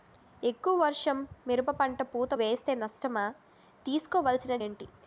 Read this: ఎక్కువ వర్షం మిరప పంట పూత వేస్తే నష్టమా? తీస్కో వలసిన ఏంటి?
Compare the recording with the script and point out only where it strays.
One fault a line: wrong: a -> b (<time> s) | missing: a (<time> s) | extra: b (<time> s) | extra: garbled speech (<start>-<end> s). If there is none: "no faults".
no faults